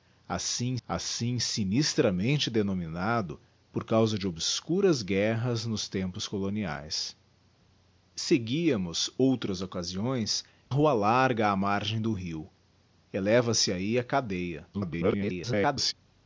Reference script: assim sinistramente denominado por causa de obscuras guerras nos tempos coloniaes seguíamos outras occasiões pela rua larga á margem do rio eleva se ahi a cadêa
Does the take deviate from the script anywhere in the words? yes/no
yes